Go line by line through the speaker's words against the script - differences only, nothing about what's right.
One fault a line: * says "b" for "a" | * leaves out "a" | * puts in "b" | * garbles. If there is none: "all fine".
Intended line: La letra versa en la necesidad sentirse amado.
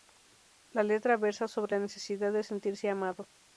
* says "sobre" for "en"
* puts in "de"